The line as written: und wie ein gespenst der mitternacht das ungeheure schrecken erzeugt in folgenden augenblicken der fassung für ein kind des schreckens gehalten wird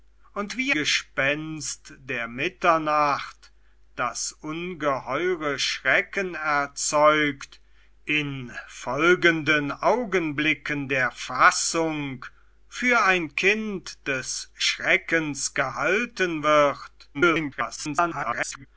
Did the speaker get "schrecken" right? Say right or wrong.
right